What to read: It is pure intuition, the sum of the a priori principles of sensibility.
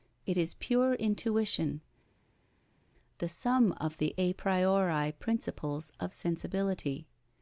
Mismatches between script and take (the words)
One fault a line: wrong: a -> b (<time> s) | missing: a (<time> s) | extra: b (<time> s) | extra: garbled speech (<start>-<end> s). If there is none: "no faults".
no faults